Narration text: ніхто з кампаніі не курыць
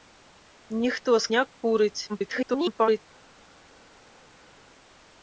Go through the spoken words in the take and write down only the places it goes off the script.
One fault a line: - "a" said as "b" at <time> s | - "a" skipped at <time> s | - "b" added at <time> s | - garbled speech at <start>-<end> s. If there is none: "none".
- "кампаніі" skipped at 1.3 s
- garbled speech at 2.1-3.0 s